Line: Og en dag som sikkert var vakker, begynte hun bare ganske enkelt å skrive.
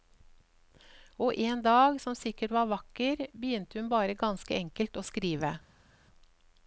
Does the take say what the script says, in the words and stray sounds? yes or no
yes